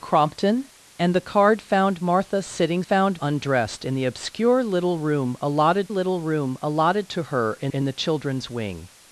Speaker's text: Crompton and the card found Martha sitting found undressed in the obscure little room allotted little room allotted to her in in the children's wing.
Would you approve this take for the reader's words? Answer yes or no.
yes